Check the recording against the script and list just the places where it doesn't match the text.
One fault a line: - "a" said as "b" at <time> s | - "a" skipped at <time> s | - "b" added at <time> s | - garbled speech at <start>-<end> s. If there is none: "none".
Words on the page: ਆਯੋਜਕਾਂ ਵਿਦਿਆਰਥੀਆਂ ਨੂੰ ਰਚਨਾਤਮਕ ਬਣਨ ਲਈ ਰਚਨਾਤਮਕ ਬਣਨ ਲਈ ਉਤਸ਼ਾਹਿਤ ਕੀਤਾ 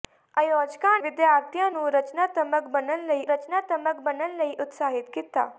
none